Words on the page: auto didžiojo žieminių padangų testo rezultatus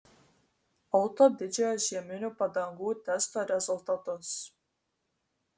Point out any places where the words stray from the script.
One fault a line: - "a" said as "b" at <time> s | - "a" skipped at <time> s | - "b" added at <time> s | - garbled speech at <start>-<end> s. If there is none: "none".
none